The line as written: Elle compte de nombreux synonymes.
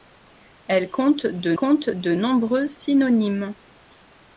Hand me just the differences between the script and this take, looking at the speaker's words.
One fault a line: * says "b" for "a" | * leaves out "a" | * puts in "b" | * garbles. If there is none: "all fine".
* puts in "compte de"